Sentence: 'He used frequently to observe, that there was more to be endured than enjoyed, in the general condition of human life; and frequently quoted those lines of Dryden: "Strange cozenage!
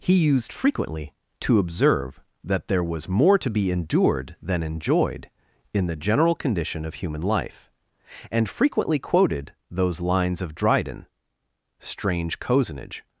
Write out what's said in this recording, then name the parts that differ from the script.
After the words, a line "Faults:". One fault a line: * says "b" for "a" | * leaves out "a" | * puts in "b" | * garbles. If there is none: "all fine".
'He used frequently to observe, that there was more to be endured than enjoyed, in the general condition of human life; and frequently quoted those lines of Dryden: "Strange cozenage!
Faults:
all fine